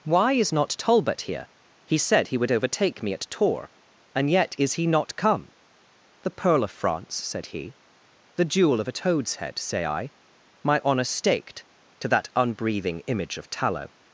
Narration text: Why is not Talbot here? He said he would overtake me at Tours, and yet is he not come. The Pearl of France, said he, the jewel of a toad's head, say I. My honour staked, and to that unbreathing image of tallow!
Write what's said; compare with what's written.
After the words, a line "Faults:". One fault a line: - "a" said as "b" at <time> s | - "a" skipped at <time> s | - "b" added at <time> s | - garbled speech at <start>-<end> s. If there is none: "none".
Why is not Talbot here? He said he would overtake me at Tours, and yet is he not come. The Pearl of France, said he, the jewel of a toad's head, say I. My honour staked, to that unbreathing image of tallow!
Faults:
- "and" skipped at 11.6 s